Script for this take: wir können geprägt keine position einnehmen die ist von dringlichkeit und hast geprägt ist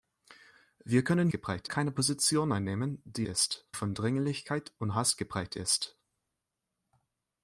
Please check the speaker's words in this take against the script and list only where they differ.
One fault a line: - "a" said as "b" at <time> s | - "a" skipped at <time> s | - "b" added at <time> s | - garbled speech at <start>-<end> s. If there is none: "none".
none